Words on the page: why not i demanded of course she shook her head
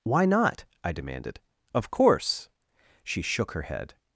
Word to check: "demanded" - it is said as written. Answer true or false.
true